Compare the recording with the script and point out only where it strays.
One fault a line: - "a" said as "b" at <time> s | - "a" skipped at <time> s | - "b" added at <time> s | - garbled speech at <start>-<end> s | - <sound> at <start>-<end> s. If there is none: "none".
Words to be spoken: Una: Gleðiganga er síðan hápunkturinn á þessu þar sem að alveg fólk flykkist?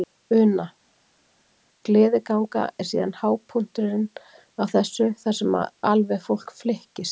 none